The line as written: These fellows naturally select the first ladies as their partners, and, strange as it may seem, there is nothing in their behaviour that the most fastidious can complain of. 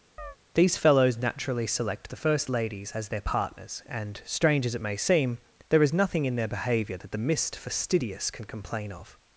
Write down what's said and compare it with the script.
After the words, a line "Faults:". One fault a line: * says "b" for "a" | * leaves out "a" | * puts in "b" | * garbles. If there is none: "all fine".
These fellows naturally select the first ladies as their partners, and, strange as it may seem, there is nothing in their behaviour that the mist fastidious can complain of.
Faults:
* says "mist" for "most"